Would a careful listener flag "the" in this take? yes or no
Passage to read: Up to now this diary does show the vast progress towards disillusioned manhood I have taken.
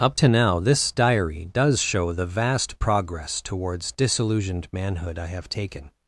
no